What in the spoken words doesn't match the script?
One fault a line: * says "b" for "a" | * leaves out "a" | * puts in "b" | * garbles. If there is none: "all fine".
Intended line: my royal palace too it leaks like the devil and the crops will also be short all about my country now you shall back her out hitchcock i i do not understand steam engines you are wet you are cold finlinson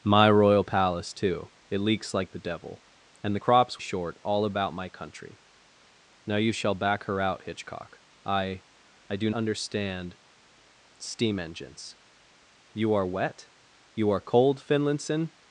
* leaves out "will also be"
* leaves out "not"